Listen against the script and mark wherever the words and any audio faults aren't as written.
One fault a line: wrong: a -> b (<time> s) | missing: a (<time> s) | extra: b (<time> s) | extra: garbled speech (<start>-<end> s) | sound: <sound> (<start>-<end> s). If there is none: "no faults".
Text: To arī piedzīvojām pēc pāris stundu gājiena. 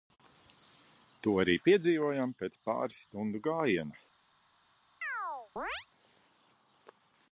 sound: chirp (5.0-5.9 s)